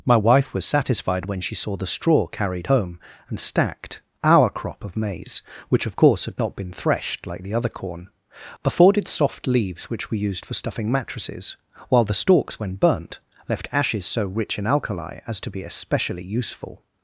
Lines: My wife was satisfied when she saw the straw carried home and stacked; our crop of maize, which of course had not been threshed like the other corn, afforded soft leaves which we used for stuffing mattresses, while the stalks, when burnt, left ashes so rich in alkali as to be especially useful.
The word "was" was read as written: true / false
true